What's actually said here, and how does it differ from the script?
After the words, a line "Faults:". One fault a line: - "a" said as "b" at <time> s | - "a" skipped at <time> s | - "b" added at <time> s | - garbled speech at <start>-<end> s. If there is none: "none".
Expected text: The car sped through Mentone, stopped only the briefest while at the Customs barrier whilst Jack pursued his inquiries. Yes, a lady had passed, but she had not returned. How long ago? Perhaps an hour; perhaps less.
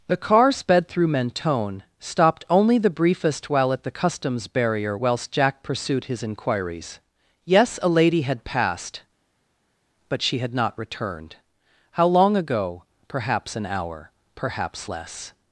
The car sped through Mentone, stopped only the briefest while at the Customs barrier whilst Jack pursued his inquiries. Yes, a lady had passed, but she had not returned. How long ago? Perhaps an hour; perhaps less.
Faults:
none